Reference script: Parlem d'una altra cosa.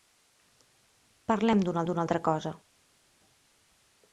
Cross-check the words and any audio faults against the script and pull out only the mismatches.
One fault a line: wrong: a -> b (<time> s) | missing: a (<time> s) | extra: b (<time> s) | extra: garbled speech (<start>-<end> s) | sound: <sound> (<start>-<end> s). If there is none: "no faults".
extra: d'una (1.9 s)